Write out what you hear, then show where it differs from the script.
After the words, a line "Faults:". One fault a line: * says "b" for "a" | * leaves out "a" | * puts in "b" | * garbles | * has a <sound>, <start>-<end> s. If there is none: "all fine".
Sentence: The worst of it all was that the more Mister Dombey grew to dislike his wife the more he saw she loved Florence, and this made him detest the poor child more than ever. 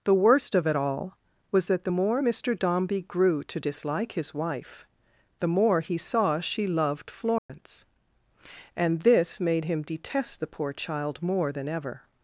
The worst of it all was that the more Mister Dombey grew to dislike his wife the more he saw she loved Florence, and this made him detest the poor child more than ever.
Faults:
* has a dropout, 7.4-7.5 s